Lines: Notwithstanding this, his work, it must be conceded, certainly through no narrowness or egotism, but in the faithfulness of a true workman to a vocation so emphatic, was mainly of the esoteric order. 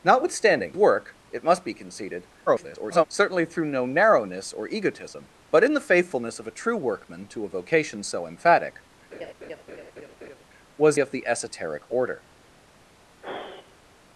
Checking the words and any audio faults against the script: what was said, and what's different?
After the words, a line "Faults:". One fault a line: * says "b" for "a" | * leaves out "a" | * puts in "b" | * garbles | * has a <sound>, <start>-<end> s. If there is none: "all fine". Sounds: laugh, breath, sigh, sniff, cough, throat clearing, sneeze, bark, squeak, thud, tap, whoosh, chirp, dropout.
Notwithstanding work, it must be conceded, [garbled] certainly through no narrowness or egotism, but in the faithfulness of a true workman to a vocation so emphatic, was of the esoteric order.
Faults:
* leaves out "this his"
* garbles
* has a laugh, 9.1-10.4 s
* leaves out "mainly"
* has a sigh, 13.2-14.0 s